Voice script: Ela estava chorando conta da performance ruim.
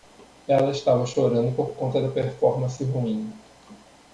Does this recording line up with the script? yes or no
no